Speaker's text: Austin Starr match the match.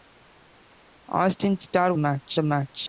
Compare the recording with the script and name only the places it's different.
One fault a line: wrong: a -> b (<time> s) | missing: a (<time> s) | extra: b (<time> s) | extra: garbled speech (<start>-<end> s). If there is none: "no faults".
no faults